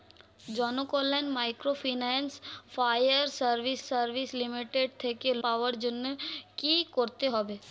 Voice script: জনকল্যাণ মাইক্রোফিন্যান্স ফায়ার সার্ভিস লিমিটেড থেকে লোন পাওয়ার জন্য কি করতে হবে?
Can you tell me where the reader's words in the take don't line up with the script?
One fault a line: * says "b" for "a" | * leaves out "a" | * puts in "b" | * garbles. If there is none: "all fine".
* puts in "সার্ভিস"
* leaves out "লোন"